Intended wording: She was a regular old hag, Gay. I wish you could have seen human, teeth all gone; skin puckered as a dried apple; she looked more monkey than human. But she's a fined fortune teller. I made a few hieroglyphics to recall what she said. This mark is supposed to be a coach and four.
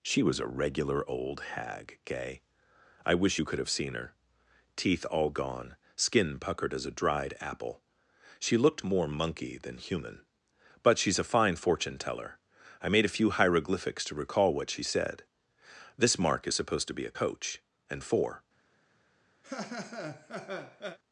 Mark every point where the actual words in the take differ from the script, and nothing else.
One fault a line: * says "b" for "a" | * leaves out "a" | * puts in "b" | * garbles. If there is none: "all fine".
* says "her" for "human"
* says "fine" for "fined"